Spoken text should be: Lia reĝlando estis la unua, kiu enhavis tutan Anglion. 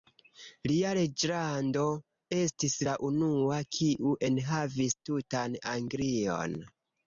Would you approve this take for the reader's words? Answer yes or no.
yes